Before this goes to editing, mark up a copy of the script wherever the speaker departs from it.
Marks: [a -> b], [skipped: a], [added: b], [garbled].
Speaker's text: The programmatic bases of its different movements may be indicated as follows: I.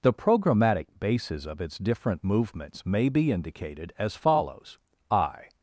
The programmatic bases of its different movements may be indicated as follows: I.